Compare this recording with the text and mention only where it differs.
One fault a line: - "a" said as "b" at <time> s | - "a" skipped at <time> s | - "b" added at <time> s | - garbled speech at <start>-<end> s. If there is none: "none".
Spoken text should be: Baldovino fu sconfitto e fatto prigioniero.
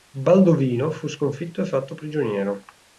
none